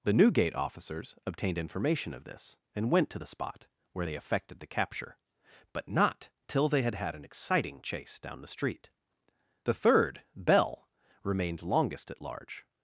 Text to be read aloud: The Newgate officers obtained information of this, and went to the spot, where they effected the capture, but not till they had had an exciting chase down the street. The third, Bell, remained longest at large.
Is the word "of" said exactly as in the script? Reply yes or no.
yes